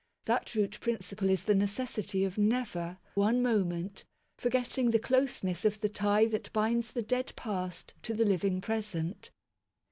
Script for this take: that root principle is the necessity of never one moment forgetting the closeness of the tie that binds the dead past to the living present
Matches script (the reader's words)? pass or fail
pass